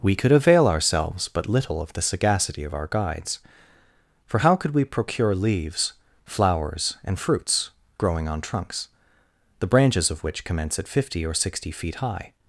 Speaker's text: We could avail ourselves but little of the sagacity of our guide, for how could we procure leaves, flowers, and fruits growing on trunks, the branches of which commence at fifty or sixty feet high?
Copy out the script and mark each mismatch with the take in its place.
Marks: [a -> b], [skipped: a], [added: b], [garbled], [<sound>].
We could avail ourselves but little of the sagacity of our [guide, -> guides] for how could we procure leaves, flowers, and fruits growing on trunks, the branches of which commence at fifty or sixty feet high?